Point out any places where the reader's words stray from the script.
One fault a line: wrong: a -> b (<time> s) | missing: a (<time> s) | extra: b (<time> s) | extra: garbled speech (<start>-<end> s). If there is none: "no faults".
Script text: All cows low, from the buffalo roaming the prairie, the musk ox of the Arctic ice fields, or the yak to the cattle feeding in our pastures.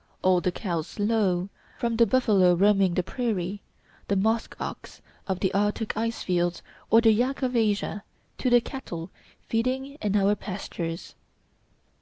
extra: the (0.4 s)
extra: of Asia (7.4 s)